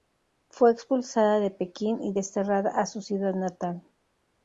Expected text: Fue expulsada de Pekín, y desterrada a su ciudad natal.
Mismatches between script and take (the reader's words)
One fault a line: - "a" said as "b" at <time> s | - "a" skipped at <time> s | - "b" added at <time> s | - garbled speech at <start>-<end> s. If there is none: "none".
none